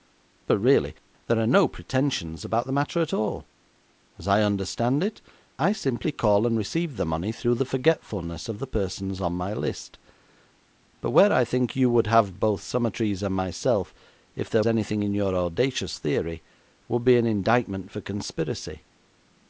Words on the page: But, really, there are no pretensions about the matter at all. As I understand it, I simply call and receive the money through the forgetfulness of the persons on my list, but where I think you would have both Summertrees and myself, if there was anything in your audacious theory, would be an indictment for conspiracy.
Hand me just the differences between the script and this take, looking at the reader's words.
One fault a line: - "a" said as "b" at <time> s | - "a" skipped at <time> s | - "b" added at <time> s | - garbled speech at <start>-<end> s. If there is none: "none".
- "was" skipped at 14.6 s